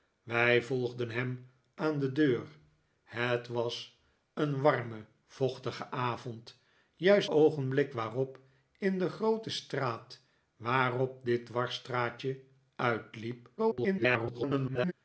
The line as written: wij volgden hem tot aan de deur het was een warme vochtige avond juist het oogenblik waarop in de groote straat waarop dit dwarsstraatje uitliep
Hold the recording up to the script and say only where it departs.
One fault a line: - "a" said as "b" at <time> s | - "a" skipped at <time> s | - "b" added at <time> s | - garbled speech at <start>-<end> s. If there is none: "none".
- "tot" skipped at 1.5 s
- "het" skipped at 7.3 s
- garbled speech at 13.6-14.9 s